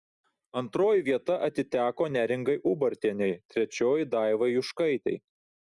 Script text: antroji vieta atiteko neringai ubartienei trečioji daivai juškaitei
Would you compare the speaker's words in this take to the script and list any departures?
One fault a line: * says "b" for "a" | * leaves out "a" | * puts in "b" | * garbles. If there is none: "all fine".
all fine